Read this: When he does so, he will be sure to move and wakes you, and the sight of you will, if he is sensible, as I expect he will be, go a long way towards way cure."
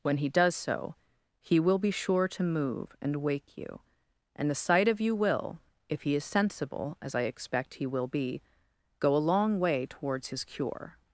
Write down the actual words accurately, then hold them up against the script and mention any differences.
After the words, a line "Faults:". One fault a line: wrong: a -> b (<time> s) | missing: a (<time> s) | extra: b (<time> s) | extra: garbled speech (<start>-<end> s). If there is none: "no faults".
When he does so, he will be sure to move and wake you, and the sight of you will, if he is sensible, as I expect he will be, go a long way towards his cure."
Faults:
wrong: wakes -> wake (3.2 s)
wrong: way -> his (10.3 s)